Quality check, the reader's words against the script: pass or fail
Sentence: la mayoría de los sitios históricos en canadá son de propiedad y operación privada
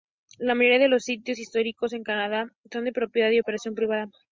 pass